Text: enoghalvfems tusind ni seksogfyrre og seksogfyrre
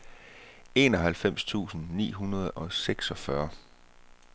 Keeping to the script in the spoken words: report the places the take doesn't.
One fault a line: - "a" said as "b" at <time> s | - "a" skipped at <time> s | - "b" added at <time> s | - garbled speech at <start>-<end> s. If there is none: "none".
- "seksogfyrre" said as "hundrede" at 2.1 s